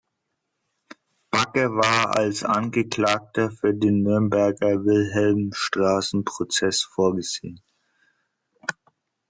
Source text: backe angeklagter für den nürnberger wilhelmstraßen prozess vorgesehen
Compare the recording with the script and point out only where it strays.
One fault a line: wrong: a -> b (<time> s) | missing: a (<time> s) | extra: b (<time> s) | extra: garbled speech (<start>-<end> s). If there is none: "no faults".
extra: war als (1.8 s)